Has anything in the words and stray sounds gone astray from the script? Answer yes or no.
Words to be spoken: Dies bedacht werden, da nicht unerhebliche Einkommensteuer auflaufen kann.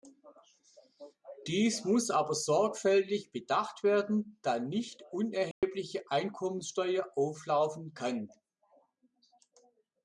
yes